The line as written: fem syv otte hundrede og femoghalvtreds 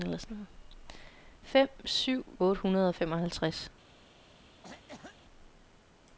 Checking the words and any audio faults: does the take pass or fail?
fail